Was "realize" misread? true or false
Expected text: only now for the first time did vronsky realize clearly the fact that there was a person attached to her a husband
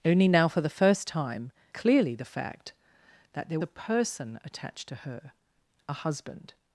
true